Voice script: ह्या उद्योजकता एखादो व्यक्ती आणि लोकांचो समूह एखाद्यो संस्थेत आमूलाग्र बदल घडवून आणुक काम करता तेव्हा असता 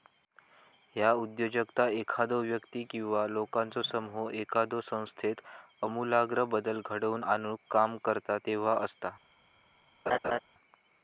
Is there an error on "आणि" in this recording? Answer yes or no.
yes